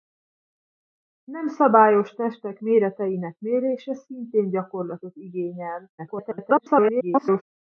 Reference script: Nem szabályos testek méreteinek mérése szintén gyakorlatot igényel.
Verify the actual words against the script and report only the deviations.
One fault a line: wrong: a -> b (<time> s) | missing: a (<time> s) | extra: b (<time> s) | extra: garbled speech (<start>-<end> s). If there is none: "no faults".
extra: garbled speech (6.0-7.4 s)